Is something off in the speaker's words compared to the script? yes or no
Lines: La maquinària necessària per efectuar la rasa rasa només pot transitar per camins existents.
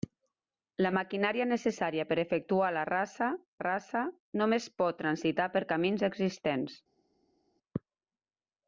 no